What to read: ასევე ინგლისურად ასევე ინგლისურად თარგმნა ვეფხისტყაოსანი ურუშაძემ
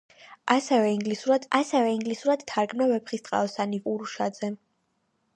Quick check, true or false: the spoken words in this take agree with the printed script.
true